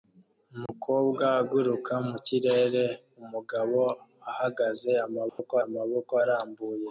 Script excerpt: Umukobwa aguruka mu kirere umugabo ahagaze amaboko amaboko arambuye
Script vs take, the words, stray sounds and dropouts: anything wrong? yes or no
yes